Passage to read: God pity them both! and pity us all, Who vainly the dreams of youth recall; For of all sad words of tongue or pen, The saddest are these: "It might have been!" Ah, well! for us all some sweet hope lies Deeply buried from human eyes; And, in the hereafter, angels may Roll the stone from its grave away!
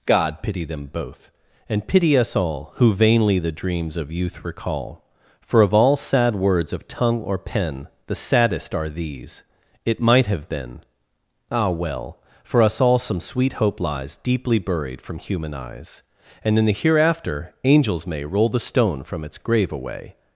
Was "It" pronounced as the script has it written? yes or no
yes